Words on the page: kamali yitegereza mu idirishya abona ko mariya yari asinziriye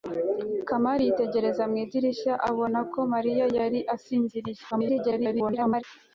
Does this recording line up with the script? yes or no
no